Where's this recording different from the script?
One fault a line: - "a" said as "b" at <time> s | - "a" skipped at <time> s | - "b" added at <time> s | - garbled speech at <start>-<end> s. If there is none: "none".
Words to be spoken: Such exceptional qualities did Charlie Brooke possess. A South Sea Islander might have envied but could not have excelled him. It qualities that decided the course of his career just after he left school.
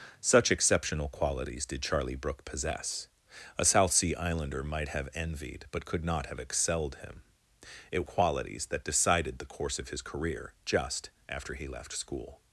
none